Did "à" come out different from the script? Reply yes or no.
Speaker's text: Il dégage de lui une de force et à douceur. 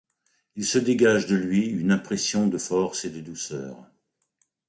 yes